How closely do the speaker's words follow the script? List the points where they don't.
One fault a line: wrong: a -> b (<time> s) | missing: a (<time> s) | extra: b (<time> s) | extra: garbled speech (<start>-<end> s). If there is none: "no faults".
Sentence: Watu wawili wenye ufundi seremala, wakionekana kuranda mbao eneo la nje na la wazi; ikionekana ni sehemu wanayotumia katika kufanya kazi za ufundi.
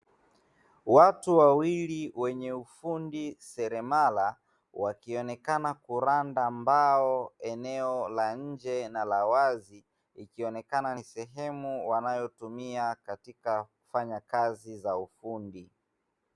no faults